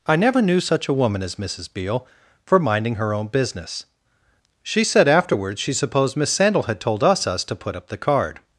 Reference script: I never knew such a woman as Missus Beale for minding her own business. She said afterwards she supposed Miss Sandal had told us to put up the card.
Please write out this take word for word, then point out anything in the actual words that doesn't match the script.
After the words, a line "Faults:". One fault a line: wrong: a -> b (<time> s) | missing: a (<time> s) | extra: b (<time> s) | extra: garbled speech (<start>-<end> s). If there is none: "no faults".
I never knew such a woman as Missus Beale for minding her own business. She said afterwards she supposed Miss Sandal had told us us to put up the card.
Faults:
extra: us (7.3 s)